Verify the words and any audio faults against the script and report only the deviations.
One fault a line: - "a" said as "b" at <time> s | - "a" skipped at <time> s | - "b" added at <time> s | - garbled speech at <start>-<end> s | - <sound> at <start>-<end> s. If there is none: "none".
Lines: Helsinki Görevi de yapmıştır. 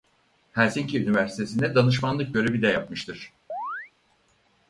- "Üniversitesi'nde danışmanlık" added at 1.0 s
- chirp at 3.5-3.9 s